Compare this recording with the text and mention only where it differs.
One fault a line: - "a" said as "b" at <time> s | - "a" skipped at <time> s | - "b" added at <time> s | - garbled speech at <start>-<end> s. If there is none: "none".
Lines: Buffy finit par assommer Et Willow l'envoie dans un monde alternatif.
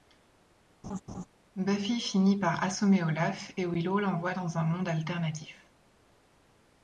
- "Olaf" added at 3.0 s